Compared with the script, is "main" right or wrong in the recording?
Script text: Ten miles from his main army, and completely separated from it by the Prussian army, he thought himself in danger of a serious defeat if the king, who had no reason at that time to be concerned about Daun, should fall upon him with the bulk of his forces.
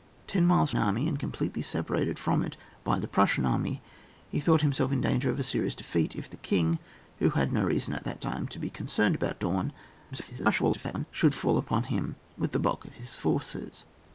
wrong